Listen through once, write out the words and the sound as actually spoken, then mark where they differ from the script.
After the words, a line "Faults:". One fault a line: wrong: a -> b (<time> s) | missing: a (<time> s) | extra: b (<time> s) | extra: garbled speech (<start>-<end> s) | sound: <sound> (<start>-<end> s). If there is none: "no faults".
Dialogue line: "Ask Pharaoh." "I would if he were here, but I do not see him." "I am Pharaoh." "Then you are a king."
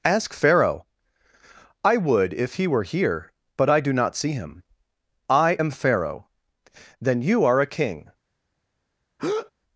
"Ask Pharaoh." "I would if he were here, but I do not see him." "I am Pharaoh." "Then you are a king."
Faults:
sound: breath (9.2-9.5 s)